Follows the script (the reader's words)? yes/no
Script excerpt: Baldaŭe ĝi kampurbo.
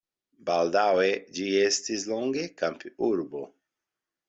no